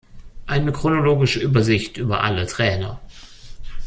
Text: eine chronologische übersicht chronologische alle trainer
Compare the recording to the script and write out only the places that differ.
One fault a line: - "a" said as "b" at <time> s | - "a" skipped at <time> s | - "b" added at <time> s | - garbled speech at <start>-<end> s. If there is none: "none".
- "chronologische" said as "über" at 2.0 s